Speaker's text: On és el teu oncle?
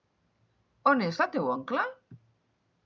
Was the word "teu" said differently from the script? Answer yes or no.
no